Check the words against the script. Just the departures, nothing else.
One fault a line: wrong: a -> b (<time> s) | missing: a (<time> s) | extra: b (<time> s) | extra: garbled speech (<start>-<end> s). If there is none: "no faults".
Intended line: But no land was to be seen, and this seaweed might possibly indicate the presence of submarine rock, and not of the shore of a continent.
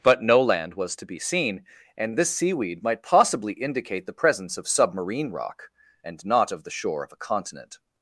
no faults